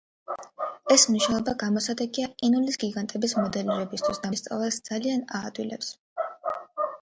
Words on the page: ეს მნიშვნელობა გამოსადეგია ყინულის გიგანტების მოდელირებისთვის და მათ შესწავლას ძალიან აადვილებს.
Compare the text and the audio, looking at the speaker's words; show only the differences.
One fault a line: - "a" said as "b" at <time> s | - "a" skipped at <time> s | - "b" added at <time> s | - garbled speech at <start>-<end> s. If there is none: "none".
- "მათ" skipped at 4.3 s